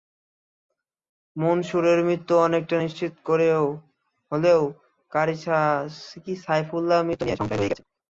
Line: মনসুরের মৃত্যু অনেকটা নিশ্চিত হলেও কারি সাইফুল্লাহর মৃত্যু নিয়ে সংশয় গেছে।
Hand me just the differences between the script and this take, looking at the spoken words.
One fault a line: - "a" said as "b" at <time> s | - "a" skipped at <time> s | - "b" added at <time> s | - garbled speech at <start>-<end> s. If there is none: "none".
- "রয়েই" added at 7.6 s